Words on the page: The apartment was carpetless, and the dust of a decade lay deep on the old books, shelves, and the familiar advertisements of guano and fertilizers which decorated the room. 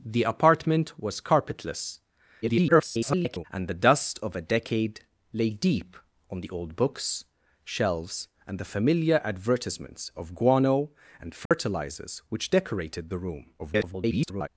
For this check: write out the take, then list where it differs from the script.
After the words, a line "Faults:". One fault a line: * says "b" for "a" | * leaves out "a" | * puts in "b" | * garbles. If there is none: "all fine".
The apartment was carpetless, [garbled] and the dust of a decade lay deep on the old books, shelves, and the familiar advertisements of guano and fertilizers which decorated the room. [garbled]
Faults:
* garbles
* garbles